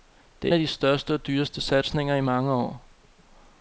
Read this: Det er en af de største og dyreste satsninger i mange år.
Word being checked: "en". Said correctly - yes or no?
no